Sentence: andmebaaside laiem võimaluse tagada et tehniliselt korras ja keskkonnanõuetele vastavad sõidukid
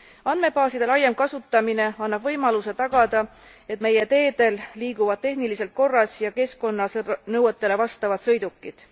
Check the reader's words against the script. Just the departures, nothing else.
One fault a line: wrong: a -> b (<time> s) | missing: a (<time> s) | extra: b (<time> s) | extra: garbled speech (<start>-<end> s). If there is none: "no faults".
extra: kasutamine annab (1.2 s)
extra: meie teedel liiguvad (3.9 s)